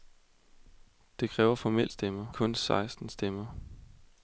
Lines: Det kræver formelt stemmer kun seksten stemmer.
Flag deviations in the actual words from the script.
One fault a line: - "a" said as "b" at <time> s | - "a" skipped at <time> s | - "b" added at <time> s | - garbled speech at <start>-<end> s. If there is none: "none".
none